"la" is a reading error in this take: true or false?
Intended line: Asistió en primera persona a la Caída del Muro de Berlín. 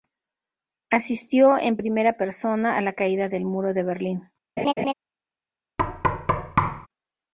false